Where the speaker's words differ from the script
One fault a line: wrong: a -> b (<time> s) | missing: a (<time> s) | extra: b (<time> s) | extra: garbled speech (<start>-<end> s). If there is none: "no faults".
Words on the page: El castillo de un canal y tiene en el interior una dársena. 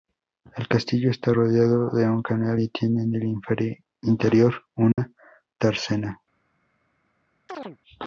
extra: está rodeado (1.1 s)